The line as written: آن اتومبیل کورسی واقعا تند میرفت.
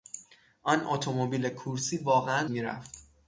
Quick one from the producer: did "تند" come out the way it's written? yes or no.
no